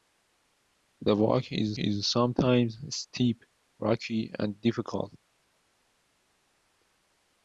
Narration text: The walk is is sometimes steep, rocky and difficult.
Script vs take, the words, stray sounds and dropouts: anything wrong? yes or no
no